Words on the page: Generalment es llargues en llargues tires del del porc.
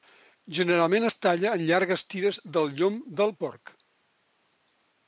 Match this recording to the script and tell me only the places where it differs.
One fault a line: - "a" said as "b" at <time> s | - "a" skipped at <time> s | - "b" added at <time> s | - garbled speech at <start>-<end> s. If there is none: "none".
- "llargues" said as "talla" at 1.2 s
- "llom" added at 2.8 s